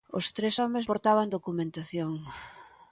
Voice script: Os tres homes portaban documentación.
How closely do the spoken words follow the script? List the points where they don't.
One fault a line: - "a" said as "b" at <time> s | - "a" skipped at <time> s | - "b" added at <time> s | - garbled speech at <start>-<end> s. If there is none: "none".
none